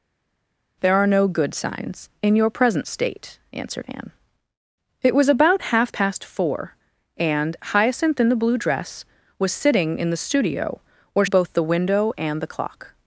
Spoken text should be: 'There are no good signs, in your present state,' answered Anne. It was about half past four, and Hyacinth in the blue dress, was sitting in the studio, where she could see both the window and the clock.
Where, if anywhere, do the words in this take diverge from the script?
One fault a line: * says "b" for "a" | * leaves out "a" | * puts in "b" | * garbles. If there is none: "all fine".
* leaves out "she could see"